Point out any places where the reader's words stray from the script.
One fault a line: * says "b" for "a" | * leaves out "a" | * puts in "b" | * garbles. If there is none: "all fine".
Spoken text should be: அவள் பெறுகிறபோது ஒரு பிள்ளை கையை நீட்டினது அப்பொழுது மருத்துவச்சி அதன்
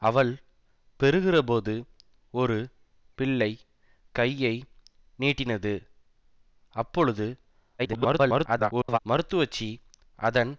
* garbles